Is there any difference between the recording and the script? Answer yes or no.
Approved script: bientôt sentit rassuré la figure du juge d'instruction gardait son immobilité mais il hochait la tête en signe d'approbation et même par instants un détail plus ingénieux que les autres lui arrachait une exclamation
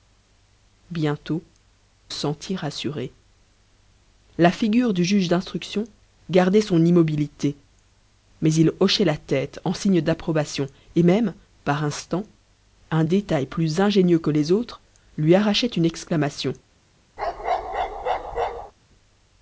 no